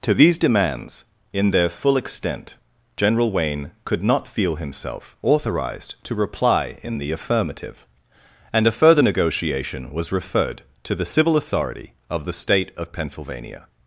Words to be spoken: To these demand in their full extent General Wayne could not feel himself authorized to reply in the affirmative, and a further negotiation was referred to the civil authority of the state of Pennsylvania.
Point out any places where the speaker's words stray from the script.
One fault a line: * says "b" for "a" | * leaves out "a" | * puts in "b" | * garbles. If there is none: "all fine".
* says "demands" for "demand"